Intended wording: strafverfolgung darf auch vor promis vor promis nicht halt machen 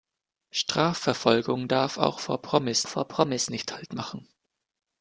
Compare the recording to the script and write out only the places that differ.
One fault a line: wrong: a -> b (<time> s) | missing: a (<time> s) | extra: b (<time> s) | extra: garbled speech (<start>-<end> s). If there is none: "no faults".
no faults